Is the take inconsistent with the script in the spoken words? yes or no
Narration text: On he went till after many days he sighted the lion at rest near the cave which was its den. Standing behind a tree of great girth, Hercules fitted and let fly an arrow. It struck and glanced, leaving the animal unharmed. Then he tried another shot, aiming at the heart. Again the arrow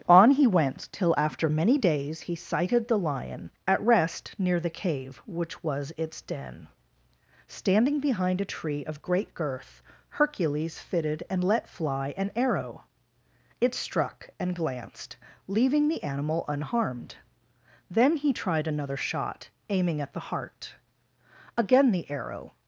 no